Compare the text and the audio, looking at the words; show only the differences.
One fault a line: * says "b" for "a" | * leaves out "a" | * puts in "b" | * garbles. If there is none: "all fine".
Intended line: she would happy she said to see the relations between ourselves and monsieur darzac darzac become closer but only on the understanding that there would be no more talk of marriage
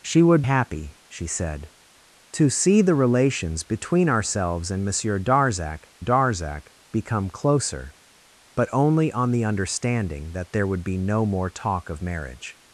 all fine